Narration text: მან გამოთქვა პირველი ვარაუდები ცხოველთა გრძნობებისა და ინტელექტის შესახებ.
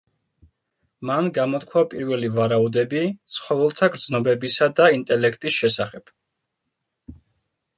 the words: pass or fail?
pass